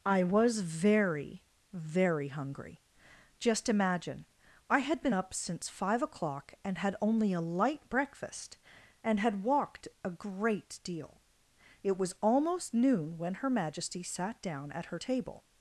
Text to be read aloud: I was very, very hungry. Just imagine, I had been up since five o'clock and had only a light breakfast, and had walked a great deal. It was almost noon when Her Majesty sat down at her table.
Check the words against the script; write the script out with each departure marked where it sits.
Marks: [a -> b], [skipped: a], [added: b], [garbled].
I was very, very hungry. Just imagine, I had been up since five o'clock and had only a light breakfast, and had walked a great deal. It was almost noon when Her Majesty sat down at her table.